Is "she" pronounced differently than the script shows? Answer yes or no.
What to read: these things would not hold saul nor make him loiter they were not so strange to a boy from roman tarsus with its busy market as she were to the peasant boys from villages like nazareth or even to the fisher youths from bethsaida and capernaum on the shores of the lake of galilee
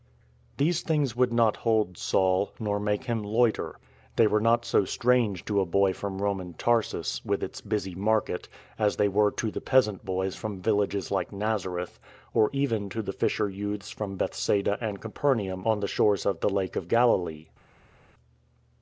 yes